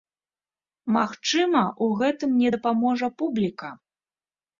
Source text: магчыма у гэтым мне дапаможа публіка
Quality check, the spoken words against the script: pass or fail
pass